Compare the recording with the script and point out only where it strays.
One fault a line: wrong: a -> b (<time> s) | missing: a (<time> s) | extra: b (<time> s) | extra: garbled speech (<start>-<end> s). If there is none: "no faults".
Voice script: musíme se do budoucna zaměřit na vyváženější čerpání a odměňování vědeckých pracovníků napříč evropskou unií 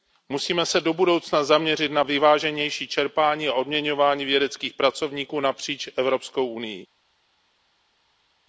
no faults